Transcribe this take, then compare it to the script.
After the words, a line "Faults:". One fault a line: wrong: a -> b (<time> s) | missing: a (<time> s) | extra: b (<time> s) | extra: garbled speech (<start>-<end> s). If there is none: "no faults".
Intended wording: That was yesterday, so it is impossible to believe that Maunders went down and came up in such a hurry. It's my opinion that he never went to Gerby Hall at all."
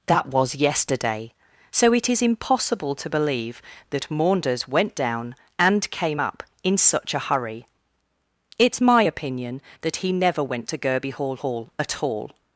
That was yesterday, so it is impossible to believe that Maunders went down and came up in such a hurry. It's my opinion that he never went to Gerby Hall Hall at all."
Faults:
extra: Hall (11.4 s)